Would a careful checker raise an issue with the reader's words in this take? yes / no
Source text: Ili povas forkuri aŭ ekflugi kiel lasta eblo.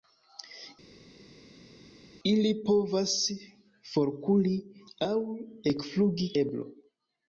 yes